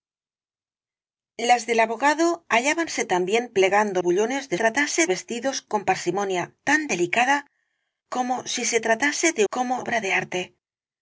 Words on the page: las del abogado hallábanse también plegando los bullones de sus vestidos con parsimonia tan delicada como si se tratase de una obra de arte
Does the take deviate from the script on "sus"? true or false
true